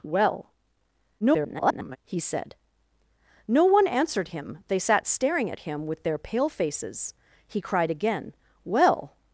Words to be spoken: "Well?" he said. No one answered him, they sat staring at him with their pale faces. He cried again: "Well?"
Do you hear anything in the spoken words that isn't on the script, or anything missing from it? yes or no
yes